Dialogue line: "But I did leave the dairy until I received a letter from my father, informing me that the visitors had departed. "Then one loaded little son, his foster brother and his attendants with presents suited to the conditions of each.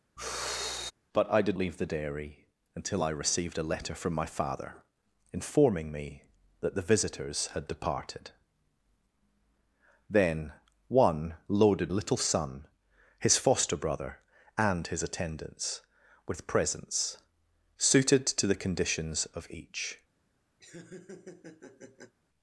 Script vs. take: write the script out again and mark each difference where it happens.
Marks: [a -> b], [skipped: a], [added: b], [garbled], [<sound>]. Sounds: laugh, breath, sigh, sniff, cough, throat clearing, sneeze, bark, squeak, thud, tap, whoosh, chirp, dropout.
[sigh] "But I did leave the dairy until I received a letter from my father, informing me that the visitors had departed. "Then one loaded little son, his foster brother and his attendants with presents suited to the conditions of each. [laugh]